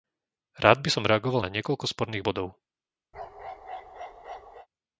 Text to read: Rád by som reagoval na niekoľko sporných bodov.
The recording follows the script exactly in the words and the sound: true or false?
false